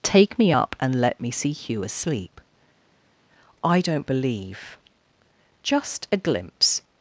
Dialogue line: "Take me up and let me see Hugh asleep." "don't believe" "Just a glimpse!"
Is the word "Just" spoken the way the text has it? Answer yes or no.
yes